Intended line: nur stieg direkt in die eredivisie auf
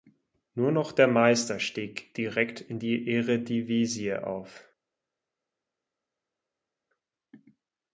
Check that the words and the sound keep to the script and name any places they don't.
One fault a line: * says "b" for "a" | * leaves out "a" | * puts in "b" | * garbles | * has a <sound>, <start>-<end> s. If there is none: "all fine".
* puts in "noch der meister"